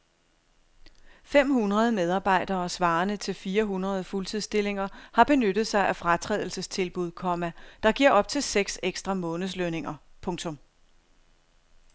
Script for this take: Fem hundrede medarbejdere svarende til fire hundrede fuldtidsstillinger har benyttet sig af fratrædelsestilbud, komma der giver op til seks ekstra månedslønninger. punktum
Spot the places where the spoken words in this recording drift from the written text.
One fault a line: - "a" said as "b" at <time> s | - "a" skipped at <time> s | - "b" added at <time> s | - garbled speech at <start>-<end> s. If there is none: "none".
none